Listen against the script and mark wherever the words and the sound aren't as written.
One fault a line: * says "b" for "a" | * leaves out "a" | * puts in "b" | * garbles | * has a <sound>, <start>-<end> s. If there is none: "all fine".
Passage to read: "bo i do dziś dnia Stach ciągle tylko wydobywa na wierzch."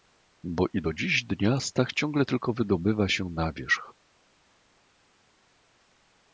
* puts in "się"